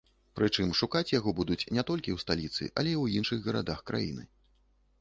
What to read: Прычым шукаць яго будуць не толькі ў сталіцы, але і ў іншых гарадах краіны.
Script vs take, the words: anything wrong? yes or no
no